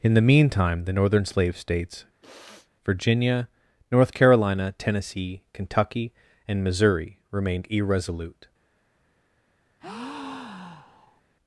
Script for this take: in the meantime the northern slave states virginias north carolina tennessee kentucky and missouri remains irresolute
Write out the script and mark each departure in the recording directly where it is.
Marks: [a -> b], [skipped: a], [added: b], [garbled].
in the meantime the northern slave states [virginias -> virginia] north carolina tennessee kentucky and missouri [remains -> remained] irresolute